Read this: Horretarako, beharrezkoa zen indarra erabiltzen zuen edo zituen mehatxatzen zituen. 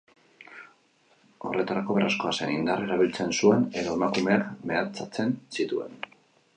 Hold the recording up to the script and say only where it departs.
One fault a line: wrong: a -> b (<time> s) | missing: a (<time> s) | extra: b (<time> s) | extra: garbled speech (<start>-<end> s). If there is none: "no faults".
wrong: zituen -> emakumeak (4.0 s)